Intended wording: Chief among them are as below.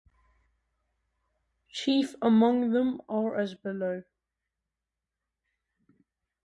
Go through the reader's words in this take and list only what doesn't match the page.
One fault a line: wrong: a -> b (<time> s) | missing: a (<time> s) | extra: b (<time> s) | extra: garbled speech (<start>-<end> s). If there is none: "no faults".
no faults